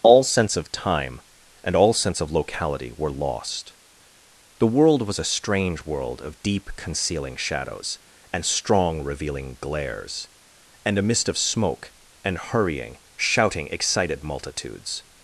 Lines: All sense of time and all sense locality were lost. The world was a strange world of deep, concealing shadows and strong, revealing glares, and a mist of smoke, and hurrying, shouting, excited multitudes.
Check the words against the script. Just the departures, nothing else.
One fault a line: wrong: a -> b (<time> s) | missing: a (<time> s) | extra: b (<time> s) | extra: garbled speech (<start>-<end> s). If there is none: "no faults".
extra: of (2.2 s)